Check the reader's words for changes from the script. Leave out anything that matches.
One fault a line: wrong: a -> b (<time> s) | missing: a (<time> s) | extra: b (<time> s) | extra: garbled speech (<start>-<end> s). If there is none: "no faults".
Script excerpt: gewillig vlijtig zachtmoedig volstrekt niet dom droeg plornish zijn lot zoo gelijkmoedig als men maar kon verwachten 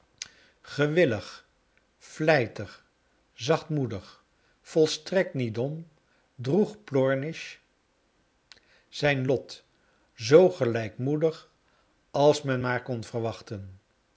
no faults